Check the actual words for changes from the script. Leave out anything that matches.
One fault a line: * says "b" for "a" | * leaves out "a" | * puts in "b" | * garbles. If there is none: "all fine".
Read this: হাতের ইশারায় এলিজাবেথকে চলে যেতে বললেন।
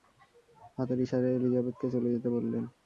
all fine